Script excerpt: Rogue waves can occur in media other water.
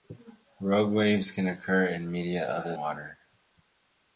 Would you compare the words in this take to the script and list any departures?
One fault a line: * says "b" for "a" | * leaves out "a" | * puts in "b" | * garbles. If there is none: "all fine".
all fine